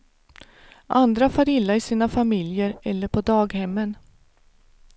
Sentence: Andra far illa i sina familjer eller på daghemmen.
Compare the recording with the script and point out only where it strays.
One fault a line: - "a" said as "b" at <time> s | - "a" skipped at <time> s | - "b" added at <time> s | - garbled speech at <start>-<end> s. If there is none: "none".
none